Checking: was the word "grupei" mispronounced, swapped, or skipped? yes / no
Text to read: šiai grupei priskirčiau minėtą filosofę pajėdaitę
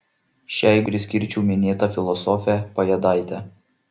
yes